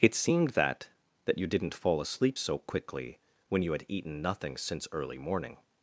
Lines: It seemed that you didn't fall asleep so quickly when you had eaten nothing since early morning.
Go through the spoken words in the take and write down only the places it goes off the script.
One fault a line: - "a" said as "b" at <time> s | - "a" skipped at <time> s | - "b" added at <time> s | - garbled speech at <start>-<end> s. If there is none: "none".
- "that" added at 1.2 s